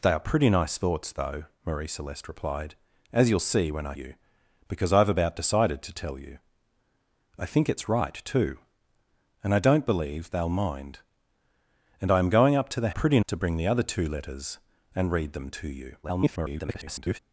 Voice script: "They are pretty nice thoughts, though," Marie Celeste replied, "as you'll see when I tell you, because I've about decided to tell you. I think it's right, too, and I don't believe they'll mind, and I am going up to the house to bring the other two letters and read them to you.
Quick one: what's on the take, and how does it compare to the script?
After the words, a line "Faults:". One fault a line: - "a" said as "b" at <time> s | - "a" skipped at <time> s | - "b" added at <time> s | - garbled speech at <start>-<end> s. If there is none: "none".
"They are pretty nice thoughts, though," Marie Celeste replied, "as you'll see when I you, because I've about decided to tell you. I think it's right, too, and I don't believe they'll mind, and I am going up to the pretty to bring the other two letters and read them to you. [garbled]
Faults:
- "tell" skipped at 3.9 s
- "house" said as "pretty" at 12.9 s
- garbled speech at 16.0-17.2 s